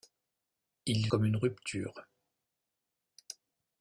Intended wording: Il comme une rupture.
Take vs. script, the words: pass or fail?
pass